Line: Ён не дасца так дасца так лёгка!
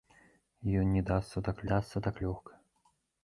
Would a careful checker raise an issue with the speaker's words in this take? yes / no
no